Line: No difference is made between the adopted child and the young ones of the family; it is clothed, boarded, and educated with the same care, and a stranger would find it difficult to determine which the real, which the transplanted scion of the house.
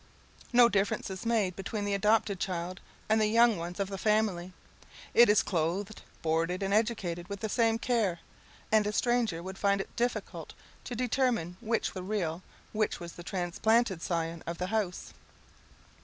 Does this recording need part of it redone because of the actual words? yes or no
no